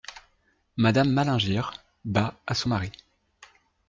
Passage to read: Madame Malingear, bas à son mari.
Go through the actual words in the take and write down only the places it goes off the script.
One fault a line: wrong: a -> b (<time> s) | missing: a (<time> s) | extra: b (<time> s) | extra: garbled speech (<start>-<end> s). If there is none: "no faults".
no faults